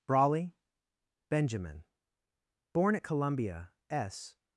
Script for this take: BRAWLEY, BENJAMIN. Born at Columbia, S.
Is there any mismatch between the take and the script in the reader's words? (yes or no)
no